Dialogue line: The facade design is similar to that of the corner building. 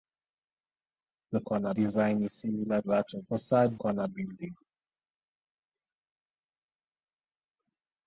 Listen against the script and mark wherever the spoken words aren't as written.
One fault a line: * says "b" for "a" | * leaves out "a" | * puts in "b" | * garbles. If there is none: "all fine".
* says "corner" for "facade"
* leaves out "to"
* says "facade" for "the"